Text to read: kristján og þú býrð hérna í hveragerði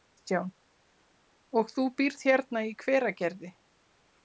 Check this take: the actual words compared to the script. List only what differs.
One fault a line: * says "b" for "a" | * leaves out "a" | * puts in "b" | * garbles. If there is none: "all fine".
all fine